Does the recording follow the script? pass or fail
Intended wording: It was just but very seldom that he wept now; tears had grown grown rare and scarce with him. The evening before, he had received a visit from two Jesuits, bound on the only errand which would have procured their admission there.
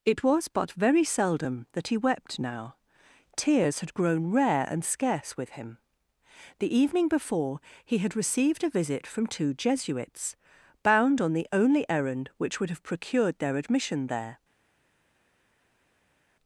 fail